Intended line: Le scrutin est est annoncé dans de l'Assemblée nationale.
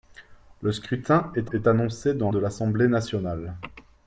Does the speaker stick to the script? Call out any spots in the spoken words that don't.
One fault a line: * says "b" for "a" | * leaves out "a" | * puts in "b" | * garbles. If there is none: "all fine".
all fine